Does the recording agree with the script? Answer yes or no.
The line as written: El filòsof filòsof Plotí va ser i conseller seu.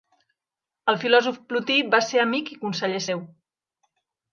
no